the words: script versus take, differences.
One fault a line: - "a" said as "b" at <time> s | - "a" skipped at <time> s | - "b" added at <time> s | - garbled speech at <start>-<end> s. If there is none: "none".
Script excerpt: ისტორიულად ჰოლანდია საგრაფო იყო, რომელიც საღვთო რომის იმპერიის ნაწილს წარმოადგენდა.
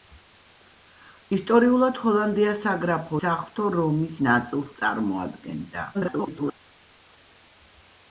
- "იყო რომელიც" skipped at 3.2 s
- "იმპერიის" skipped at 4.2 s
- garbled speech at 5.9-6.5 s